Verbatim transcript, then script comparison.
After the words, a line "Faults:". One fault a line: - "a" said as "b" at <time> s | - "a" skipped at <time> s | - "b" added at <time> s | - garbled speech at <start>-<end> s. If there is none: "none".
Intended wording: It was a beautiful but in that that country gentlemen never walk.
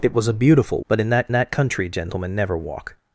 It was a beautiful but in that that country gentlemen never walk.
Faults:
none